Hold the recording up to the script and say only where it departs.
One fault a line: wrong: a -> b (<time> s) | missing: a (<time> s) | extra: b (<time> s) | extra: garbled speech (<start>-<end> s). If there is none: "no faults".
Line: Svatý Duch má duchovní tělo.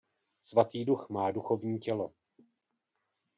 no faults